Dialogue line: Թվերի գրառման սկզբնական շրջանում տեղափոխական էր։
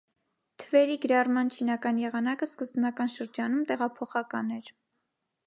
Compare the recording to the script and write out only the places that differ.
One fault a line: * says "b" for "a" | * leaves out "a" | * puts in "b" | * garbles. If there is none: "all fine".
* puts in "չինական եղանակը"